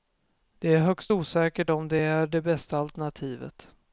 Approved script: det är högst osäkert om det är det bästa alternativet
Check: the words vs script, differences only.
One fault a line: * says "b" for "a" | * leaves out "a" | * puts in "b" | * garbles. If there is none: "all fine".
all fine